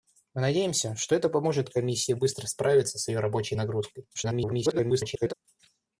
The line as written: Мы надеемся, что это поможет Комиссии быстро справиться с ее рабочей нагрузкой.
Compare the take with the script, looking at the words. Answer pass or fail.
fail